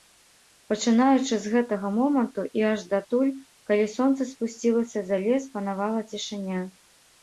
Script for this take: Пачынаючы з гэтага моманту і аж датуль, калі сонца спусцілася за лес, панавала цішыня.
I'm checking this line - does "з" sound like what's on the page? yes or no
yes